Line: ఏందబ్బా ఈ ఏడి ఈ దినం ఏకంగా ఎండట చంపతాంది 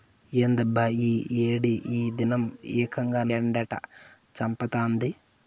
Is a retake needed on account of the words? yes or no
no